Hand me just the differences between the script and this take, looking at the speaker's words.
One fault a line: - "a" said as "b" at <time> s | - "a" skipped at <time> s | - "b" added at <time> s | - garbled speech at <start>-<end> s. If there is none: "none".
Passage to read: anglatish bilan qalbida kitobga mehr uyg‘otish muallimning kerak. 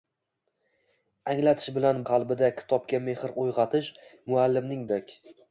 none